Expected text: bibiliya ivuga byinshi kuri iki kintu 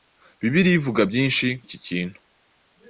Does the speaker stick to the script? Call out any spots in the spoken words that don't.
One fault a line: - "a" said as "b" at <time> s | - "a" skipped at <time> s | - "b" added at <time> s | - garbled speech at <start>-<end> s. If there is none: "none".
- "kuri" skipped at 1.5 s